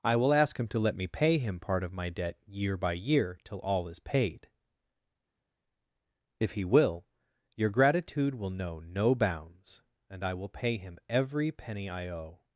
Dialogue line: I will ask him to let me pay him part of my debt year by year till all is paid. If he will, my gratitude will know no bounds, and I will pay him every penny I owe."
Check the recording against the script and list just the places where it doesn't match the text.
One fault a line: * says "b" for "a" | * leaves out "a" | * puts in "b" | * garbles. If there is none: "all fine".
* says "your" for "my"